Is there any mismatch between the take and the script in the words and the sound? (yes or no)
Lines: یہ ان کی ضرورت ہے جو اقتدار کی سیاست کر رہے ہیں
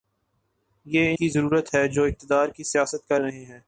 yes